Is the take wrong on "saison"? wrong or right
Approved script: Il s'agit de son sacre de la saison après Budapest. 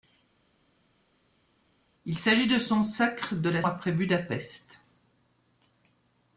wrong